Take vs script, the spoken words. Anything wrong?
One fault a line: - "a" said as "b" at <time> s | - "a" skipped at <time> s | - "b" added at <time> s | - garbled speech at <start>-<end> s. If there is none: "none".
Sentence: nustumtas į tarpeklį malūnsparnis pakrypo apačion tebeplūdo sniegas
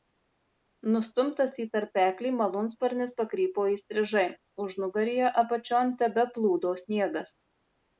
- "įstrižai užnugaryje" added at 3.7 s